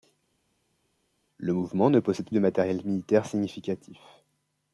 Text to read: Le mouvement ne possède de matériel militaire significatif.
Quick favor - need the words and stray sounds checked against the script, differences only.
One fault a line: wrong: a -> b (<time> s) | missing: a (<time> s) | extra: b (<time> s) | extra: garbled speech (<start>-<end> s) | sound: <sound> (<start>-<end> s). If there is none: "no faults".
no faults